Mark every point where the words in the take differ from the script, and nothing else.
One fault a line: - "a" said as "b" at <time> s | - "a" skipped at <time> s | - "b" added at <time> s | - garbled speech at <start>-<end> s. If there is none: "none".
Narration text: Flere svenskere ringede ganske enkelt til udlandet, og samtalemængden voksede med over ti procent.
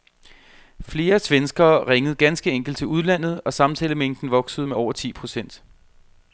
none